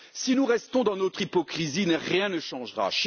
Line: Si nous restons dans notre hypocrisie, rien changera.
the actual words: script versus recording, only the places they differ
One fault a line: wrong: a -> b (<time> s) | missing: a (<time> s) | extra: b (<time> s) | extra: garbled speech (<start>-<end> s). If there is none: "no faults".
extra: ne (2.3 s)